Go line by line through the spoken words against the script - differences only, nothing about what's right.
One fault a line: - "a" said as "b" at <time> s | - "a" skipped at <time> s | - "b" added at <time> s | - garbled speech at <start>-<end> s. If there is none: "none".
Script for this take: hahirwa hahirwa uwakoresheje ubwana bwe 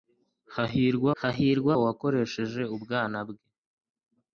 none